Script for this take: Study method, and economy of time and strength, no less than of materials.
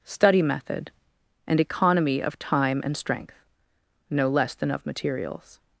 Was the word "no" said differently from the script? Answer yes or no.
no